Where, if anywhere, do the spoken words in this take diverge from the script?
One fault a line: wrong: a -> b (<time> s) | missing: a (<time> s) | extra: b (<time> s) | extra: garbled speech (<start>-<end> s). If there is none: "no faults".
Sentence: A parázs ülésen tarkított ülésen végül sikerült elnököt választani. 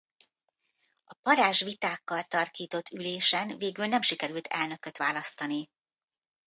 wrong: ülésen -> vitákkal (1.6 s)
extra: nem (3.9 s)